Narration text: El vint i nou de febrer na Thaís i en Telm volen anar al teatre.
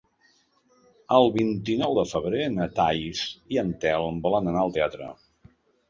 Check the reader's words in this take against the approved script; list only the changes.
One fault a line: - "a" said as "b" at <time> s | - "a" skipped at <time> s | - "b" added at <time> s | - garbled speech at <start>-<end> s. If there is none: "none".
none